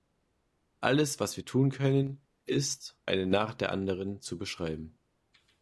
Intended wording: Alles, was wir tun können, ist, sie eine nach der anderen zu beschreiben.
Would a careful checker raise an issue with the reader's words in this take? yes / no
yes